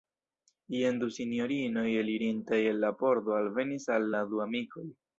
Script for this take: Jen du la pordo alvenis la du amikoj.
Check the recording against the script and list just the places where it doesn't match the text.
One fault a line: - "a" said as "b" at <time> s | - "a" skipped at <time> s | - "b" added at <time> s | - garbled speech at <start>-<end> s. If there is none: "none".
- "sinjorinoj elirintaj el" added at 1.2 s
- "al" added at 4.0 s